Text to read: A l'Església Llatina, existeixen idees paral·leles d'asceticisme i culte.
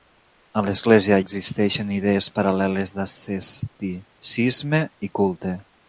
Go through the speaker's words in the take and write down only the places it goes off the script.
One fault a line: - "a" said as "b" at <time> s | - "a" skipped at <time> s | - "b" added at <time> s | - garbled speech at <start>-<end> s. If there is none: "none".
- "Llatina" skipped at 1.2 s